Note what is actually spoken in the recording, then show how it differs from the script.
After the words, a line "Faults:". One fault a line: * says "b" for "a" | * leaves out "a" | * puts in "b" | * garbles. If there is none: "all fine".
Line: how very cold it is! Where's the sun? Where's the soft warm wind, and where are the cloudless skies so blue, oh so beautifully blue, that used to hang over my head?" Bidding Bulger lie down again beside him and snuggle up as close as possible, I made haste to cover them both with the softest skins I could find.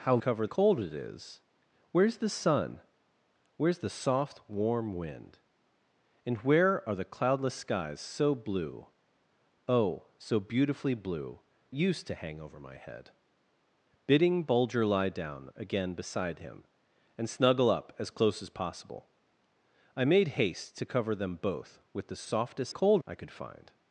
how cover cold it is! Where's the sun? Where's the soft warm wind, and where are the cloudless skies so blue, oh so beautifully blue, used to hang over my head?" Bidding Bulger lie down again beside him and snuggle up as close as possible, I made haste to cover them both with the softest cold I could find.
Faults:
* says "cover" for "very"
* leaves out "that"
* says "cold" for "skins"